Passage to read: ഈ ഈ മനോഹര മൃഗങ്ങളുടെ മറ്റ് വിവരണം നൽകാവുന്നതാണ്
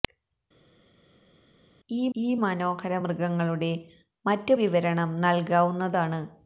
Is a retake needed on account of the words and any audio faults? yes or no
no